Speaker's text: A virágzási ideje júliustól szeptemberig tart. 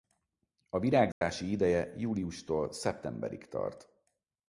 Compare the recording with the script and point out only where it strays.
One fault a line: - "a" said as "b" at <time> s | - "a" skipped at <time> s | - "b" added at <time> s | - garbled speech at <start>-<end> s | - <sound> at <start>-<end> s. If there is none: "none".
- dropout at 1.1-1.2 s